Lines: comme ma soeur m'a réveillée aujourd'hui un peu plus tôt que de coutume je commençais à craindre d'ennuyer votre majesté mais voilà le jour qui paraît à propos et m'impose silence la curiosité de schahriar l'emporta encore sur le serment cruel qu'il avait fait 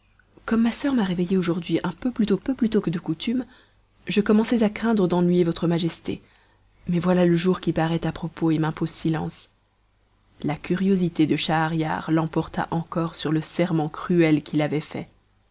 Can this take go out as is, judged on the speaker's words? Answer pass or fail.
fail